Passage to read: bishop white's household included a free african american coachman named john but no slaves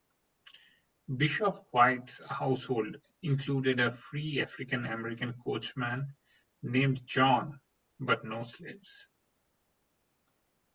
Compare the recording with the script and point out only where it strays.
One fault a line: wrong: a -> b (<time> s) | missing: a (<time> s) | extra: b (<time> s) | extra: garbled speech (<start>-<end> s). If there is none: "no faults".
no faults